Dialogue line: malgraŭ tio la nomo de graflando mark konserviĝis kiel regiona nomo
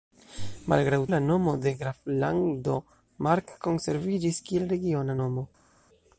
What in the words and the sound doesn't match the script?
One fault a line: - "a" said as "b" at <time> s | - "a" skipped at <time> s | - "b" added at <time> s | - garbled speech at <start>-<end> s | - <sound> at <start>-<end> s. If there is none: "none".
- "tio" skipped at 1.0 s